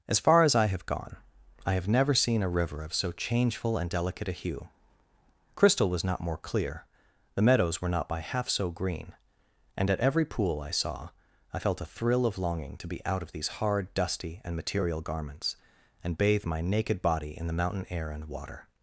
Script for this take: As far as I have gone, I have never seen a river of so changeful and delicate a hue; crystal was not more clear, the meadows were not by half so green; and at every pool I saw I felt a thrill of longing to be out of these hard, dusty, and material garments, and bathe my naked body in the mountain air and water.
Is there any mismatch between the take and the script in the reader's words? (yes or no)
no